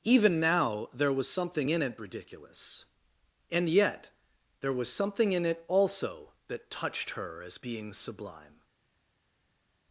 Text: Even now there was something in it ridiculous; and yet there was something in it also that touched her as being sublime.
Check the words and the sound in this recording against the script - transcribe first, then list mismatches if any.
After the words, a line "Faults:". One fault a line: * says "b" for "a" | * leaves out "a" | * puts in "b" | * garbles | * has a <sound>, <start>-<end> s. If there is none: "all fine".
Even now there was something in it ridiculous; and yet there was something in it also that touched her as being sublime.
Faults:
all fine